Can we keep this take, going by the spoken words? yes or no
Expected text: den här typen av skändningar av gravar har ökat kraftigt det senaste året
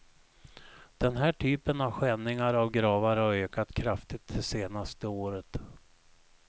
yes